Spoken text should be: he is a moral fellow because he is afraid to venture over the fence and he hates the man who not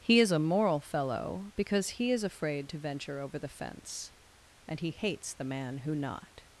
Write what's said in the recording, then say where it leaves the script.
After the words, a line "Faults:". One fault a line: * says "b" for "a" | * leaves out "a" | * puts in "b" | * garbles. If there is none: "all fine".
he is a moral fellow because he is afraid to venture over the fence and he hates the man who not
Faults:
all fine